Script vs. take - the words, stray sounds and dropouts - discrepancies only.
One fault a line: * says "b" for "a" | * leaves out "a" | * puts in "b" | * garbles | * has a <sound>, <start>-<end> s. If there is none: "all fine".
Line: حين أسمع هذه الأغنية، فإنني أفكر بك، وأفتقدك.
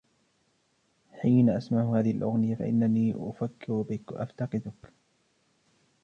all fine